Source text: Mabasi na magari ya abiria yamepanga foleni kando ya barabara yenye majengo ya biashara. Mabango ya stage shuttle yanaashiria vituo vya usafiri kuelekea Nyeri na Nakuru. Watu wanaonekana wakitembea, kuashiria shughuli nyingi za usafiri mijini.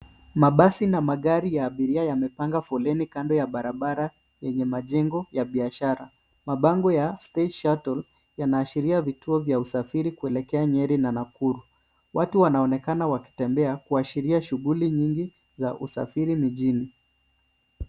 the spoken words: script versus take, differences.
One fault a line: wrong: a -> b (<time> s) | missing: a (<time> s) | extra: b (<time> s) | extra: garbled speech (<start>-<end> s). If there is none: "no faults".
no faults